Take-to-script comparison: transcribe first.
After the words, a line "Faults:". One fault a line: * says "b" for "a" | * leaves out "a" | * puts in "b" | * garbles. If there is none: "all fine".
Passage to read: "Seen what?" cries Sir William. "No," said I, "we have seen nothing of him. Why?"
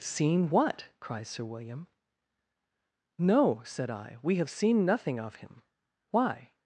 "Seen what?" cries Sir William. "No," said I, "we have seen nothing of him. Why?"
Faults:
all fine